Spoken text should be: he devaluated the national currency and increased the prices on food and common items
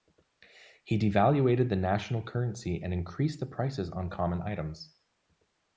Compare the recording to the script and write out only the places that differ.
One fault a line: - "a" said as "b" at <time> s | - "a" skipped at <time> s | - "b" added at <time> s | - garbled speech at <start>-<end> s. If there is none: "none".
- "food and" skipped at 4.1 s